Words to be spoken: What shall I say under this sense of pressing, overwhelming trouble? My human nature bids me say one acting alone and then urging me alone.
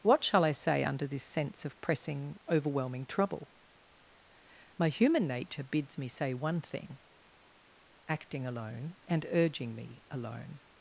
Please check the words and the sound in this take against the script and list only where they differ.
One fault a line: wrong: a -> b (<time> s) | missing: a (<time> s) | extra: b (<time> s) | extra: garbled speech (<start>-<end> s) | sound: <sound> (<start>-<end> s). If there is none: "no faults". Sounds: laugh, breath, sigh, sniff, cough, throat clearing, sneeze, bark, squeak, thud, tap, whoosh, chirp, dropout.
extra: thing (6.6 s)
missing: then (9.3 s)